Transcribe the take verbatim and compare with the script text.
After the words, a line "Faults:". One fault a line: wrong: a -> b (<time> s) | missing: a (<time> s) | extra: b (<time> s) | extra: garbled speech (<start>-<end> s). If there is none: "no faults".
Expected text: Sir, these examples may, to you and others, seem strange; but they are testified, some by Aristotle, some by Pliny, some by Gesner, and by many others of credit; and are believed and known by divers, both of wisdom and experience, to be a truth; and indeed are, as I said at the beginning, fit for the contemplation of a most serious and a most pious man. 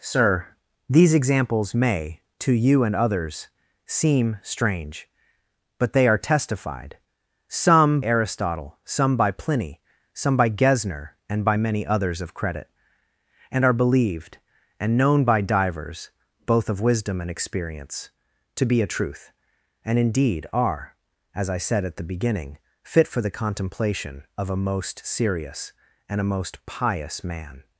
Sir, these examples may, to you and others, seem strange; but they are testified, some Aristotle, some by Pliny, some by Gesner, and by many others of credit; and are believed and known by divers, both of wisdom and experience, to be a truth; and indeed are, as I said at the beginning, fit for the contemplation of a most serious and a most pious man.
Faults:
missing: by (8.0 s)